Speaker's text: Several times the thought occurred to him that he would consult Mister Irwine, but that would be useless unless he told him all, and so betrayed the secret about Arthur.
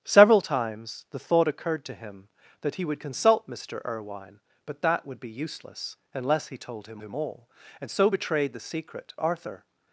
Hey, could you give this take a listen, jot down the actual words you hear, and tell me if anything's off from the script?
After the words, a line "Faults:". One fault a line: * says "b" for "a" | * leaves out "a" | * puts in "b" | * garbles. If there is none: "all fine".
Several times the thought occurred to him that he would consult Mister Irwine, but that would be useless unless he told him him all, and so betrayed the secret Arthur.
Faults:
* puts in "him"
* leaves out "about"